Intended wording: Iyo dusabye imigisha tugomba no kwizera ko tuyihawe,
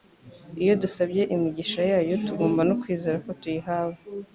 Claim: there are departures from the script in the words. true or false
true